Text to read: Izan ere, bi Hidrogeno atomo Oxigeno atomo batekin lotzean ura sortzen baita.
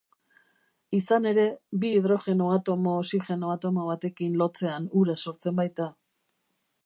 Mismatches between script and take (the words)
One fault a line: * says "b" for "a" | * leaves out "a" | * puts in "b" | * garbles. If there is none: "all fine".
all fine